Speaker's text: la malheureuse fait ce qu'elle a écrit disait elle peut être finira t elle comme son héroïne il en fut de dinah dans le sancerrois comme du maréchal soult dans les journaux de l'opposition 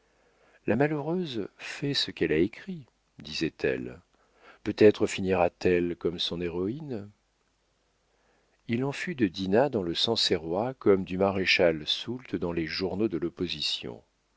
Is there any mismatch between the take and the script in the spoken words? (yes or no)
no